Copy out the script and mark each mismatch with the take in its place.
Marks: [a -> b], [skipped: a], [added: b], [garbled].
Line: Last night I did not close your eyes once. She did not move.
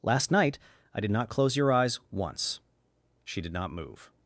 Last night I did not close your eyes once. She did not move.